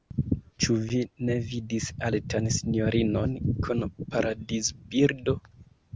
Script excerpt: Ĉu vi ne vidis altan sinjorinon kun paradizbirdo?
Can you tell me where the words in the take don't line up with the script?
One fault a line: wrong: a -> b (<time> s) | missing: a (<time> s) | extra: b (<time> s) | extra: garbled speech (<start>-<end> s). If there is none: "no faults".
no faults